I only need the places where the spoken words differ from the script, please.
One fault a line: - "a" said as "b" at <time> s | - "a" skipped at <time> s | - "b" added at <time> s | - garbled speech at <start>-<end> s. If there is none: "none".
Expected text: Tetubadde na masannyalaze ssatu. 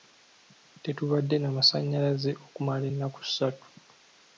- "okumala ennaku" added at 2.5 s